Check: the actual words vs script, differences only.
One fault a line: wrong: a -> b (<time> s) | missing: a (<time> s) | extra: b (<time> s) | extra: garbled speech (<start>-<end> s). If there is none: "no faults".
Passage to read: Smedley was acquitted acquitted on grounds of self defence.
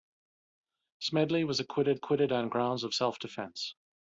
no faults